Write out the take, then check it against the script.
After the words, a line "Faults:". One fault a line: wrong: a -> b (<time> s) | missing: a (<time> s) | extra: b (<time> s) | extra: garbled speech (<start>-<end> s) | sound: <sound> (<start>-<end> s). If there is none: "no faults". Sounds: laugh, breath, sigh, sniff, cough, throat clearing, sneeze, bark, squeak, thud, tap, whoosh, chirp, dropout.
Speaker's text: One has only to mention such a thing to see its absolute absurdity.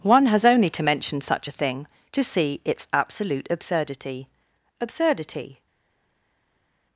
One has only to mention such a thing to see its absolute absurdity absurdity.
Faults:
extra: absurdity (4.8 s)